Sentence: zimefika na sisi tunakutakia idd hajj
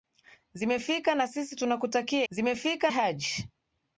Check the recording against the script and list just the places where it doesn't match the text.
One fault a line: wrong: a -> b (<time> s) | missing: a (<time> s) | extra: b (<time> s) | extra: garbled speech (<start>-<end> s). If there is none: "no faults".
wrong: idd -> zimefika (2.3 s)